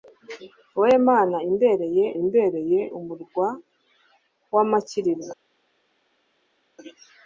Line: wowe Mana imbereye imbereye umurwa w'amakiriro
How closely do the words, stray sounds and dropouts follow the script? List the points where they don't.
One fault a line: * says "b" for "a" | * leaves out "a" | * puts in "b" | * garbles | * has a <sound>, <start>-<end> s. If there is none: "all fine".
all fine